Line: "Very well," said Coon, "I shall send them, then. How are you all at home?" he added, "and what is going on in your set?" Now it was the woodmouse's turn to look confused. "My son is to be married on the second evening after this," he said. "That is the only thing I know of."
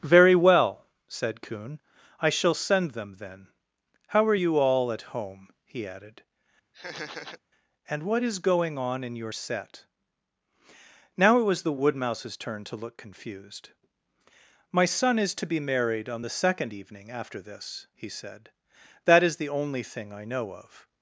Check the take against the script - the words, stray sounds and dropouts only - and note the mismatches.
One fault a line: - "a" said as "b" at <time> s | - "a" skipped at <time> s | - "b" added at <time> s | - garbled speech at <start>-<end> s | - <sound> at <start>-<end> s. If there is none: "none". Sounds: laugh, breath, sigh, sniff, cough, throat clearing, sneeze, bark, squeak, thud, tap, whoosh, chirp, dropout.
- laugh at 6.7-7.4 s